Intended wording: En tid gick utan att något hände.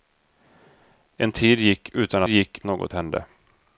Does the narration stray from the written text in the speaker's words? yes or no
yes